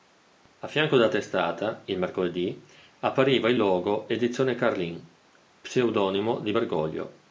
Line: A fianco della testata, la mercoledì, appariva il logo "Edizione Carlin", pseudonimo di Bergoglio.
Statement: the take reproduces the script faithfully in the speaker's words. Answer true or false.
false